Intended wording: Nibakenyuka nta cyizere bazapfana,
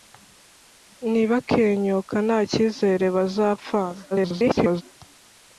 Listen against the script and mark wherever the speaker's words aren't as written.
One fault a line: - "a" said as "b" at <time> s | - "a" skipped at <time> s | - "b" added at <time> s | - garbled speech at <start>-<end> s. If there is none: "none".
- garbled speech at 4.1-4.8 s